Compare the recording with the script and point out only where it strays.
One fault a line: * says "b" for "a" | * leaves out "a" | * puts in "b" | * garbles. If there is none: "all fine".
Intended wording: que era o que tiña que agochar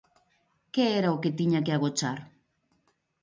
all fine